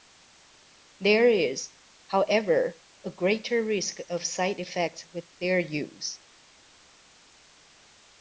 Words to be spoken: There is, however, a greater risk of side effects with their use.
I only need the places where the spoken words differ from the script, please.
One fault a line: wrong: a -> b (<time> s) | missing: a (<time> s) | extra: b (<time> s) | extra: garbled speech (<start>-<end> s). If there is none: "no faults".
no faults